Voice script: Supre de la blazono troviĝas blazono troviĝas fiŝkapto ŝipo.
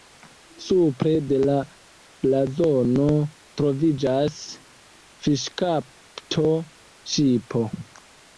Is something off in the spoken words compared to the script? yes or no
yes